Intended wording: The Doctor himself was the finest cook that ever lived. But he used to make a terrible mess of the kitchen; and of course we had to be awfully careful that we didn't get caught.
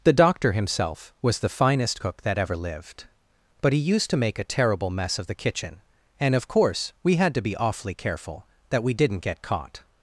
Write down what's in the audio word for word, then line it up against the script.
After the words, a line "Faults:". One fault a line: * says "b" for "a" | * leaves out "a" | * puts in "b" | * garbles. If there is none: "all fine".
The Doctor himself was the finest cook that ever lived. But he used to make a terrible mess of the kitchen; and of course we had to be awfully careful that we didn't get caught.
Faults:
all fine